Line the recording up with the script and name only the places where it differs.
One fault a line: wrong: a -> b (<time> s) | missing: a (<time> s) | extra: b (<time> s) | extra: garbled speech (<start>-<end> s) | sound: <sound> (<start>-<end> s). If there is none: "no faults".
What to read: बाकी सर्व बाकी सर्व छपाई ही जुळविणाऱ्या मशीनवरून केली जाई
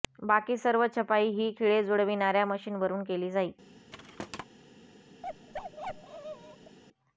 missing: बाकी सर्व (0.8 s)
extra: खिळे (1.6 s)
sound: thud (3.9-4.5 s)
sound: bark (5.2-6.8 s)